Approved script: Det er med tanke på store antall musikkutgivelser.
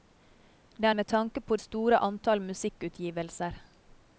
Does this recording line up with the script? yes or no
yes